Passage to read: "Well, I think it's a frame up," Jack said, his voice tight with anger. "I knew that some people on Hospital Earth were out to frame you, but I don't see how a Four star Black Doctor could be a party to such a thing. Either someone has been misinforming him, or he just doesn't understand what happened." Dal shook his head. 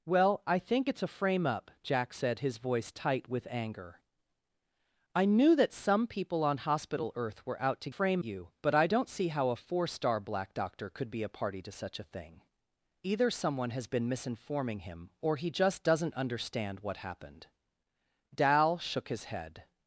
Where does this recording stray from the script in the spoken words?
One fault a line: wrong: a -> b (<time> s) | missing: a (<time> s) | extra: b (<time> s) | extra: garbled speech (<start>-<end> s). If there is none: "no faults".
no faults